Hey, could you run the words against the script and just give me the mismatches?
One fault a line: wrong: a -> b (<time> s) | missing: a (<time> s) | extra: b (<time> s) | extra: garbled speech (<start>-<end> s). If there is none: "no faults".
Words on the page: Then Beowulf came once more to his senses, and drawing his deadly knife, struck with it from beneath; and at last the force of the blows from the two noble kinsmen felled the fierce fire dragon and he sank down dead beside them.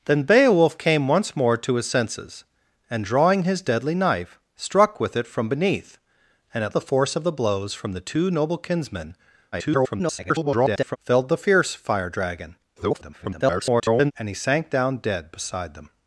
missing: last (6.8 s)
extra: garbled speech (9.5-11.0 s)
extra: garbled speech (12.8-14.1 s)